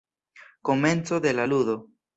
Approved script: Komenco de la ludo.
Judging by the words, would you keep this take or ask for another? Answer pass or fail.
pass